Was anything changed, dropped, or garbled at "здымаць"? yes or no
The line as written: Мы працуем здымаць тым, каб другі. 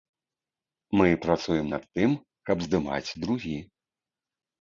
yes